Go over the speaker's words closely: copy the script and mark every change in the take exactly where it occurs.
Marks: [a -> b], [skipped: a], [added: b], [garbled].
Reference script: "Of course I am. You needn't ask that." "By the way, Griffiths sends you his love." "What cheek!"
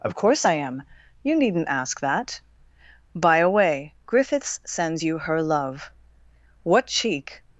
"Of course I am. You needn't ask that." "By [the -> a] way, Griffiths sends you [his -> her] love." "What cheek!"